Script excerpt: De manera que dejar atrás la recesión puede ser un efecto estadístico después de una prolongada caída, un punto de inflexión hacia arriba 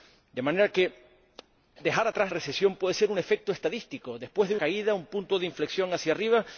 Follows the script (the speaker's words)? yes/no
no